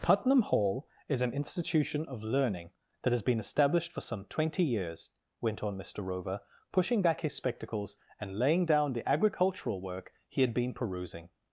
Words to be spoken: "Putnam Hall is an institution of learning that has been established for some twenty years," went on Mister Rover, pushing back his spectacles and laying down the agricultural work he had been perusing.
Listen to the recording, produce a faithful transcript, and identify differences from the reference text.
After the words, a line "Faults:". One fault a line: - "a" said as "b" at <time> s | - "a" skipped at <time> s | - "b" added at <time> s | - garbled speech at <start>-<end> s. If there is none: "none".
"Putnam Hall is an institution of learning that has been established for some twenty years," went on Mister Rover, pushing back his spectacles and laying down the agricultural work he had been perusing.
Faults:
none